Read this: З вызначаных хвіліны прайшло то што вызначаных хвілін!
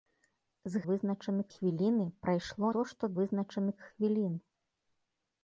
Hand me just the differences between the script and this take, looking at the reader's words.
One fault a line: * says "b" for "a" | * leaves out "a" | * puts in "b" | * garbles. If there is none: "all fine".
all fine